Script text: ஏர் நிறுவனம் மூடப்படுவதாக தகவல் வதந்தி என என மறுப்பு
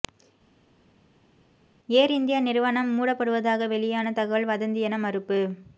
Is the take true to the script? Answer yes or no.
no